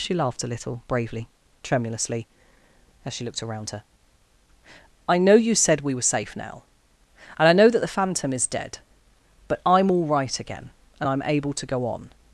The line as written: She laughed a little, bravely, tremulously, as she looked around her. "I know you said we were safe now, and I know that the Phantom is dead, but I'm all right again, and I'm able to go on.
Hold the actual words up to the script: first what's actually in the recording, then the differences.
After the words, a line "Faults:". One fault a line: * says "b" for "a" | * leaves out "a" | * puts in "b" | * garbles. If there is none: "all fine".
She laughed a little, bravely, tremulously, as she looked around her. "I know you said we were safe now, and I know that the Phantom is dead, but I'm all right again, and I'm able to go on.
Faults:
all fine